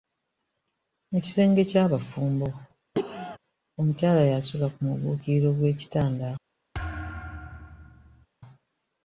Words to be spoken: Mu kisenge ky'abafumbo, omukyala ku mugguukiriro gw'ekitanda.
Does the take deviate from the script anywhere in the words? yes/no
yes